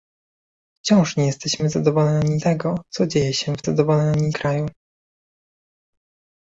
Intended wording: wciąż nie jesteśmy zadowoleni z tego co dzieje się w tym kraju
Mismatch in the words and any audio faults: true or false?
true